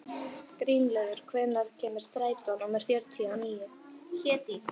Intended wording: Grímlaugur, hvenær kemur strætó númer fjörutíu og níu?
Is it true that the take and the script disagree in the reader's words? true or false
false